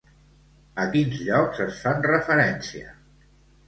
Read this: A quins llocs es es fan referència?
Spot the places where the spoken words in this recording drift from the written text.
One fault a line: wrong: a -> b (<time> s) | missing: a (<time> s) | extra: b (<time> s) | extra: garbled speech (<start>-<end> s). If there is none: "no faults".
missing: es (1.8 s)